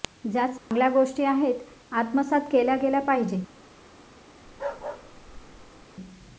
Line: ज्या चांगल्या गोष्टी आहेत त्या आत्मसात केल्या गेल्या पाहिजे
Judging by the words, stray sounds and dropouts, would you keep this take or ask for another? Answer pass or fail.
fail